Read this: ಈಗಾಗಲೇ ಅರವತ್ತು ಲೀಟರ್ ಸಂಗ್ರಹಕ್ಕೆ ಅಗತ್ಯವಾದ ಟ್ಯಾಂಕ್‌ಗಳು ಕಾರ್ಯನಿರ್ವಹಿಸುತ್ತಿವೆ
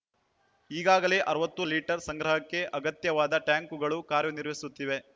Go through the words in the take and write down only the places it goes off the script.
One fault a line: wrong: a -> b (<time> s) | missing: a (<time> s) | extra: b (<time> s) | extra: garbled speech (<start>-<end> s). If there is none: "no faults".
no faults